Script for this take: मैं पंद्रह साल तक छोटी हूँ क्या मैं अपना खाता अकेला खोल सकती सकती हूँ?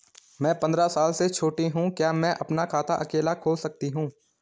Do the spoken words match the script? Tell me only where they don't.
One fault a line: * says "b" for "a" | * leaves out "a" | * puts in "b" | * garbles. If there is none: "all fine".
* says "से" for "तक"
* leaves out "सकती"